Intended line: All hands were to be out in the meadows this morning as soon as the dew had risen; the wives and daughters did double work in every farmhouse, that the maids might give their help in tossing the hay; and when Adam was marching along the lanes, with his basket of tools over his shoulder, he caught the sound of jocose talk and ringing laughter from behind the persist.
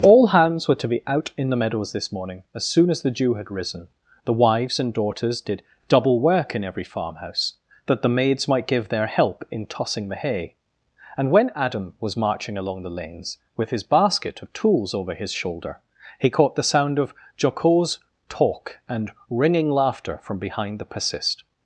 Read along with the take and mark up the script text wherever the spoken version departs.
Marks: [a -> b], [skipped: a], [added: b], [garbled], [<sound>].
All hands were to be out in the meadows this morning as soon as the dew had risen; the wives and daughters did double work in every farmhouse, that the maids might give their help in tossing the hay; and when Adam was marching along the lanes, with his basket of tools over his shoulder, he caught the sound of jocose talk and ringing laughter from behind the persist.